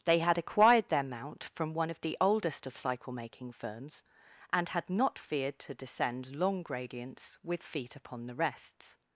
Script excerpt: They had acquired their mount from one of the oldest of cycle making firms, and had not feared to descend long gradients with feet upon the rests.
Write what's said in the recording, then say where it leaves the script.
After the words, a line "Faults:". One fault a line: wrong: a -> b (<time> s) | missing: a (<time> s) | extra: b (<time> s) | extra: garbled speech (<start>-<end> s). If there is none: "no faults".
They had acquired their mount from one of the oldest of cycle making firms, and had not feared to descend long gradients with feet upon the rests.
Faults:
no faults